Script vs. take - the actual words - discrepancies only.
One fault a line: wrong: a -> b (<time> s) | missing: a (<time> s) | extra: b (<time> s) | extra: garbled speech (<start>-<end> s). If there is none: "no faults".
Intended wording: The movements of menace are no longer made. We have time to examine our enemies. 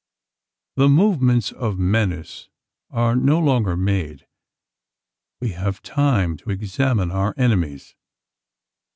no faults